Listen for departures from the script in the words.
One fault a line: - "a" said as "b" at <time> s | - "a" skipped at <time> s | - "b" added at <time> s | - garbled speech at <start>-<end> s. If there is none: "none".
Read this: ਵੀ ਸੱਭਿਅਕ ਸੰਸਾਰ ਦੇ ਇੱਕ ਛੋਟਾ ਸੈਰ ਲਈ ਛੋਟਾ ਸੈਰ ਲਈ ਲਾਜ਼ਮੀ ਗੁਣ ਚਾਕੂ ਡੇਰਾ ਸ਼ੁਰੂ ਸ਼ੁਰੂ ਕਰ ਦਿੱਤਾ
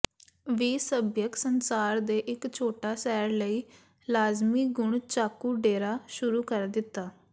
- "ਛੋਟਾ ਸੈਰ ਲਈ" skipped at 3.6 s
- "ਸ਼ੁਰੂ" skipped at 6.4 s